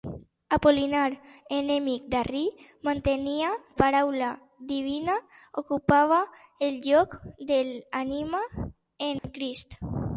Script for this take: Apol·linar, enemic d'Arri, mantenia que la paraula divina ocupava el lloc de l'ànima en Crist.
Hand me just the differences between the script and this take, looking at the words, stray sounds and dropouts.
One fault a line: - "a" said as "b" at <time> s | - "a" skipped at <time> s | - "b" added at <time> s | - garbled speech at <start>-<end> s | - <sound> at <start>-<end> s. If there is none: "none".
- "que la" skipped at 3.5 s
- dropout at 9.2-9.2 s